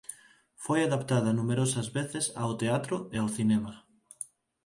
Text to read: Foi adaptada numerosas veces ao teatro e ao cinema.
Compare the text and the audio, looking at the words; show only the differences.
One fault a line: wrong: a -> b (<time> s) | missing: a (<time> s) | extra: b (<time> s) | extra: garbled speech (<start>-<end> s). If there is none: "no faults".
no faults